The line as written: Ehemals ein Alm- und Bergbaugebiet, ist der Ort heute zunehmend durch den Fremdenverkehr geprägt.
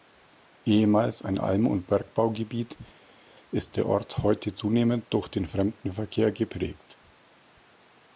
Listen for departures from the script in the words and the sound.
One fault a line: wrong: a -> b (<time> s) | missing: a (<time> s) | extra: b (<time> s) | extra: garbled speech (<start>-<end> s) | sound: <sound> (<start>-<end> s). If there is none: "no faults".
no faults